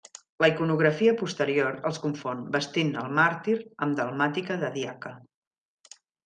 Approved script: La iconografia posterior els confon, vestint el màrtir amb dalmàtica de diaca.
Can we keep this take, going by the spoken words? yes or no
yes